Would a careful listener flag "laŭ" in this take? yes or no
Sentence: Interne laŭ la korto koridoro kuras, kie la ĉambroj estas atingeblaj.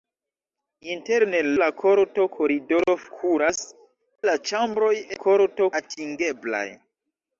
yes